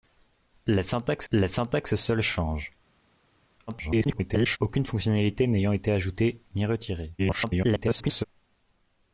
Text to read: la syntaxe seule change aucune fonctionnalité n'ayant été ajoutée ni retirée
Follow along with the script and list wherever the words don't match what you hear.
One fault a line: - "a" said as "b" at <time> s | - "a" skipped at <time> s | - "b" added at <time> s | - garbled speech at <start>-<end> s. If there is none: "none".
- "la syntaxe" added at 1.3 s
- garbled speech at 3.7-4.6 s
- garbled speech at 7.2-8.2 s